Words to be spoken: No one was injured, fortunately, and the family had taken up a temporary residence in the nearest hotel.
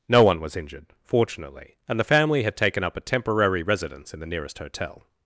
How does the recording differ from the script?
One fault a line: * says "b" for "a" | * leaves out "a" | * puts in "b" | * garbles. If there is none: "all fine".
all fine